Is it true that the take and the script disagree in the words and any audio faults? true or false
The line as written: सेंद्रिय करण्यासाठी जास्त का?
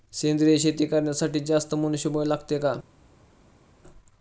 true